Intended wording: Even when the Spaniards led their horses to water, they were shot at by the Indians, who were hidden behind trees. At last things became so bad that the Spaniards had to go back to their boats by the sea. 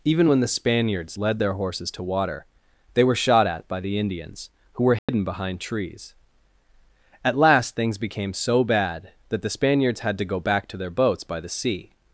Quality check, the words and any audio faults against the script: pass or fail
fail